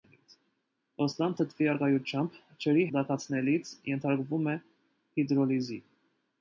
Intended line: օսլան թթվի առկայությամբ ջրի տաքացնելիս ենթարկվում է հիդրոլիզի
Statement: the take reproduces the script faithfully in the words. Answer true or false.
true